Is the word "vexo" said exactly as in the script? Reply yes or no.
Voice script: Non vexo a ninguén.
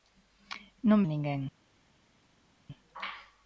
no